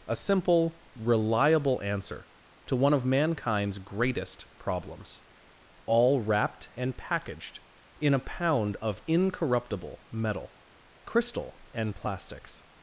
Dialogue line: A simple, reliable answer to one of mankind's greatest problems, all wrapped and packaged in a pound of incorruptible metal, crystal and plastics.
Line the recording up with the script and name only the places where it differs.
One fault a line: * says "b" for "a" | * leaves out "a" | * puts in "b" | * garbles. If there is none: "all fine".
all fine